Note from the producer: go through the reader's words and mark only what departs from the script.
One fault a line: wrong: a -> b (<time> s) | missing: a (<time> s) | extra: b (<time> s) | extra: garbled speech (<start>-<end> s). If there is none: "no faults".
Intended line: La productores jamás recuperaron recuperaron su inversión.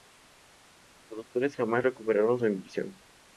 wrong: La -> Los (1.1 s)
missing: recuperaron (2.4 s)